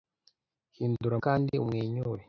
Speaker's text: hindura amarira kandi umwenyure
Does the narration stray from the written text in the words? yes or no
yes